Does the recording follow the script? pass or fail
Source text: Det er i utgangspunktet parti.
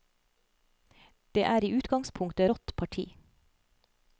fail